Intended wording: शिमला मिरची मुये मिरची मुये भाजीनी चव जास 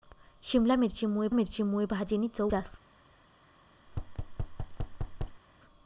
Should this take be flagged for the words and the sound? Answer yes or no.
yes